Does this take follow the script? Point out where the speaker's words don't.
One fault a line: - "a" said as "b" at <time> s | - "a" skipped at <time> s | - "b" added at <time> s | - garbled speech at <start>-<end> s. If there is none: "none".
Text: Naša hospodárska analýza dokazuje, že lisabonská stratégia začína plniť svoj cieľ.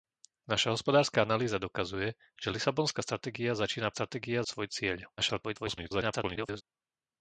- "plniť" said as "stratégia" at 3.9 s
- garbled speech at 5.2-6.6 s